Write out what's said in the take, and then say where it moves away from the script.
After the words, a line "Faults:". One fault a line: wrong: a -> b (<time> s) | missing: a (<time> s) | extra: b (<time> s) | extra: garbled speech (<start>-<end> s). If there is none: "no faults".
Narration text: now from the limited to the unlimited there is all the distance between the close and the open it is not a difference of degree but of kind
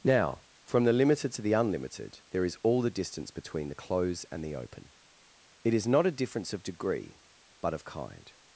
now from the limited to the unlimited there is all the distance between the close and the open it is not a difference of degree but of kind
Faults:
no faults